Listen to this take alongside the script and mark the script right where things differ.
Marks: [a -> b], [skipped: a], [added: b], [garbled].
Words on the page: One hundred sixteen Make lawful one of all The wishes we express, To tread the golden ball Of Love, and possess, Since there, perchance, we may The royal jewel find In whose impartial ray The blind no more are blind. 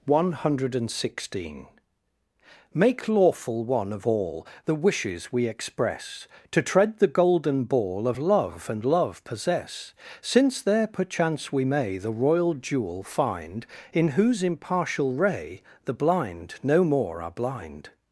One hundred sixteen Make lawful one of all The wishes we express, To tread the golden ball Of Love, and [added: love] possess, Since there, perchance, we may The royal jewel find In whose impartial ray The blind no more are blind.